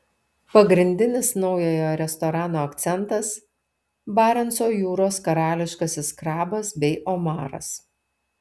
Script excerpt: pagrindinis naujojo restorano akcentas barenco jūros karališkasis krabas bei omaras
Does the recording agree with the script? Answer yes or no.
yes